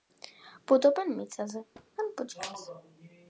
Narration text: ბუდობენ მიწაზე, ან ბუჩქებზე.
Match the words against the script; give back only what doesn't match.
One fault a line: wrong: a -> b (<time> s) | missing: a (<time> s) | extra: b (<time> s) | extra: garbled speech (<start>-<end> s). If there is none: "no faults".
no faults